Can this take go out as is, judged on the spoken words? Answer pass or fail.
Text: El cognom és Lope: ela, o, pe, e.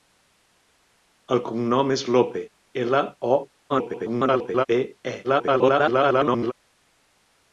fail